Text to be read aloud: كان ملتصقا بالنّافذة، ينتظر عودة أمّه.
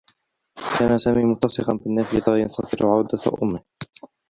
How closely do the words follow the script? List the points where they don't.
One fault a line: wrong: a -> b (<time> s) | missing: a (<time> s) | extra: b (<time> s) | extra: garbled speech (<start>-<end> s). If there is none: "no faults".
extra: سامي (1.0 s)